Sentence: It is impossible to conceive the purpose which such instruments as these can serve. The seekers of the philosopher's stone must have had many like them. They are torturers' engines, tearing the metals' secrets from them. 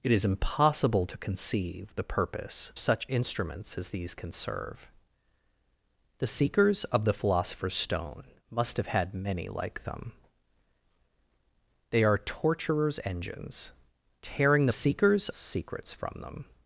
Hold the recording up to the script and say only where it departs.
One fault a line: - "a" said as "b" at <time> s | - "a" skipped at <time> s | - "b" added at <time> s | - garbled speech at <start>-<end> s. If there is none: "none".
- "which" skipped at 2.7 s
- "metals" said as "seekers" at 14.7 s